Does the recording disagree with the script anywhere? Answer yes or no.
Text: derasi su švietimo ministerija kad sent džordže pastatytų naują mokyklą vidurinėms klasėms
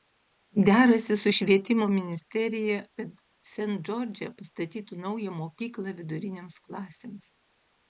no